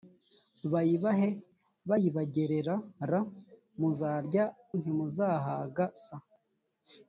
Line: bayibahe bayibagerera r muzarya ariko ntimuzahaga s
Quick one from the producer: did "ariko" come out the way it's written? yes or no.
no